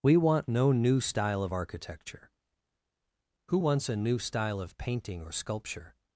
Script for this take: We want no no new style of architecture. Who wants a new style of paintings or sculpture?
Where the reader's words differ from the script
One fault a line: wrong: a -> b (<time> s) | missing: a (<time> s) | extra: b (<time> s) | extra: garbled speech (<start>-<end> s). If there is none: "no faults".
missing: no (0.7 s)
wrong: paintings -> painting (4.8 s)